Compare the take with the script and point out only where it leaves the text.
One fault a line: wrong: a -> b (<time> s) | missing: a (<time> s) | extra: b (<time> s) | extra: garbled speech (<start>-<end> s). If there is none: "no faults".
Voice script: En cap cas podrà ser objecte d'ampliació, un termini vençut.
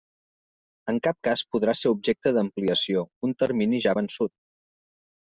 extra: ja (3.8 s)